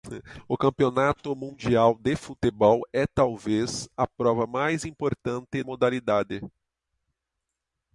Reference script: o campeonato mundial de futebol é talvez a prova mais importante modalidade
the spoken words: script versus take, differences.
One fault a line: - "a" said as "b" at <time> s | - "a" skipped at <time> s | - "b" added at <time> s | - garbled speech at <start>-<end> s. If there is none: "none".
none